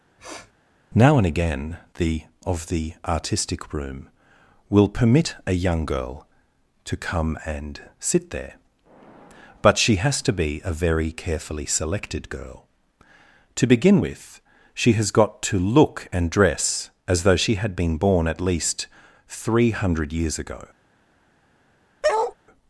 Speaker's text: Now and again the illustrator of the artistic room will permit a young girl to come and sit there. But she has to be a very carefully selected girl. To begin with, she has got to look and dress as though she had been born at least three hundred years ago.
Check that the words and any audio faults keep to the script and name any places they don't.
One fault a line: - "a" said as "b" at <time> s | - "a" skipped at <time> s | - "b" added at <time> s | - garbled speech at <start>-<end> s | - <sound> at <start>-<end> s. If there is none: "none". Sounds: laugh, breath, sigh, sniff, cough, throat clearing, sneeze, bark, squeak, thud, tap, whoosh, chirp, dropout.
- sniff at 0.2-0.5 s
- "illustrator" skipped at 2.2 s
- bark at 22.0-22.3 s